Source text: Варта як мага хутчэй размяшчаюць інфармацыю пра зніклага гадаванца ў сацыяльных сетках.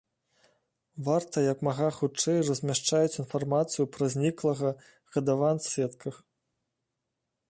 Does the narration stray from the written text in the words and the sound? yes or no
yes